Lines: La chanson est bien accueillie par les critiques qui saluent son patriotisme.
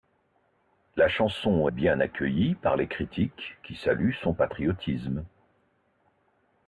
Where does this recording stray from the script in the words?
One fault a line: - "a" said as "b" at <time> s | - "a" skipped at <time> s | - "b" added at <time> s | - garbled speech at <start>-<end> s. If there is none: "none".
- "est" skipped at 1.7 s